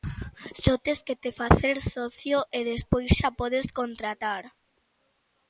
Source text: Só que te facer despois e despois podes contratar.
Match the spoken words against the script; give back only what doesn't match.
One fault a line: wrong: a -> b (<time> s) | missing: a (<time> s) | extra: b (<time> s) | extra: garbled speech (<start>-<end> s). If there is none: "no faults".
extra: tes (0.8 s)
wrong: despois -> socio (1.9 s)
extra: xa (3.2 s)